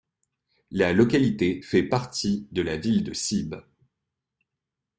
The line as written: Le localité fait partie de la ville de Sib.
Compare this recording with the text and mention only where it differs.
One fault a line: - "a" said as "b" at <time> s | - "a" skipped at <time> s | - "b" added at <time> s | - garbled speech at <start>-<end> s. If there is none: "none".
- "Le" said as "La" at 0.7 s